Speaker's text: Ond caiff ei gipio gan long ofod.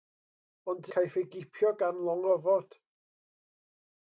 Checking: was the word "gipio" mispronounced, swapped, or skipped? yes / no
no